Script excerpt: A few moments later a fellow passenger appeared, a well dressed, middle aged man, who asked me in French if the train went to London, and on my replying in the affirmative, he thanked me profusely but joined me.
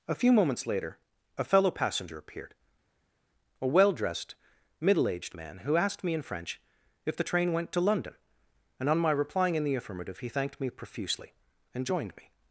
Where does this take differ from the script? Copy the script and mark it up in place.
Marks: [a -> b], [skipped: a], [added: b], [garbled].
A few moments later a fellow passenger appeared, a well dressed, middle aged man, who asked me in French if the train went to London, and on my replying in the affirmative, he thanked me profusely [but -> and] joined me.